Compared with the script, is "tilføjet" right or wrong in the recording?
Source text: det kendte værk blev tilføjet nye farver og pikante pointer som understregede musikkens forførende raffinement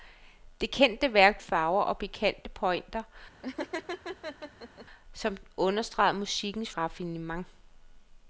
wrong